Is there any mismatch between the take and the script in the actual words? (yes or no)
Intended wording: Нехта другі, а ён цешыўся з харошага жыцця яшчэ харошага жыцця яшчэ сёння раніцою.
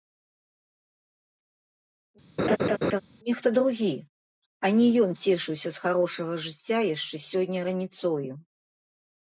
yes